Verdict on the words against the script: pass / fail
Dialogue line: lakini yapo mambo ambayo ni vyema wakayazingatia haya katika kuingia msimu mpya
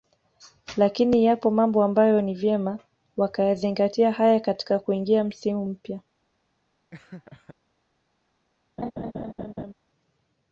pass